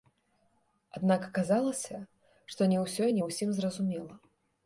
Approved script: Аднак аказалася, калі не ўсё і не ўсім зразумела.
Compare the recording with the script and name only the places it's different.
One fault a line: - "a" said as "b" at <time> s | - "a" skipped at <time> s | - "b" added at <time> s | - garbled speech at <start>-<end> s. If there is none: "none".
- "калі" said as "што" at 2.5 s